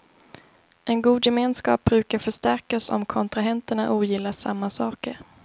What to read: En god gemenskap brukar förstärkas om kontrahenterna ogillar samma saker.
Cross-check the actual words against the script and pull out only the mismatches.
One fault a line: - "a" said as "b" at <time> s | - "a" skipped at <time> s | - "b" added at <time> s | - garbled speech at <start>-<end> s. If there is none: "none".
none